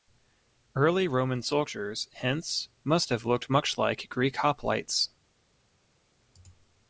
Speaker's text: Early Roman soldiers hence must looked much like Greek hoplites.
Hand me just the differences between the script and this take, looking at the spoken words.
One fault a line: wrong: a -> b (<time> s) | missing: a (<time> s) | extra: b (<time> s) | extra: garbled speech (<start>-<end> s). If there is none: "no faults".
extra: have (3.1 s)